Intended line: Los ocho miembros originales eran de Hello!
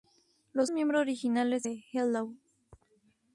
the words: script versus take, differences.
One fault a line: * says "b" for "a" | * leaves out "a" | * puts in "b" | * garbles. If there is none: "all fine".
* leaves out "ocho"
* leaves out "eran"